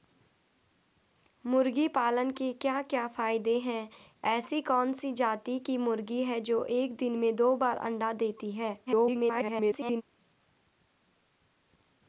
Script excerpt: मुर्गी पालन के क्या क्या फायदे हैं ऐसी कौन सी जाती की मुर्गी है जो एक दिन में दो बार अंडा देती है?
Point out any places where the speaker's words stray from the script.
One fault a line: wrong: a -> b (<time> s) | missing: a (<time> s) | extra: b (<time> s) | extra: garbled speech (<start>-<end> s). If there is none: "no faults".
extra: garbled speech (8.9-10.0 s)